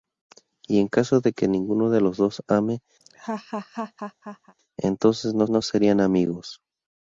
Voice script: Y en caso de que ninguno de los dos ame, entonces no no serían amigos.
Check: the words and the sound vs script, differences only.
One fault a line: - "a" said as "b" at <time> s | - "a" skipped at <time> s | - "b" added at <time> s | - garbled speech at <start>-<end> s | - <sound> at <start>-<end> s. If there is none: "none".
- laugh at 3.0-4.5 s